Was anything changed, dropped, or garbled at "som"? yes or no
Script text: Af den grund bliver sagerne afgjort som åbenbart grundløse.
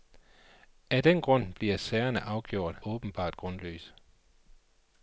yes